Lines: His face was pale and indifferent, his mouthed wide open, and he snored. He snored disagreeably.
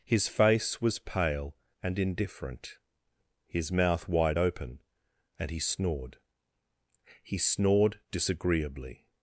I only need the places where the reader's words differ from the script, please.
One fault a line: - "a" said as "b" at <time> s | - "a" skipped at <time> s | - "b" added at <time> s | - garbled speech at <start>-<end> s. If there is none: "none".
- "mouthed" said as "mouth" at 3.7 s